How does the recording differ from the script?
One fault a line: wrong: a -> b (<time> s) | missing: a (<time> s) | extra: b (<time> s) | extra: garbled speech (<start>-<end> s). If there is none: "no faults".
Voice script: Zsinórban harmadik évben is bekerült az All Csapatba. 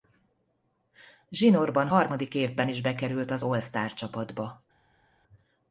extra: Star (3.6 s)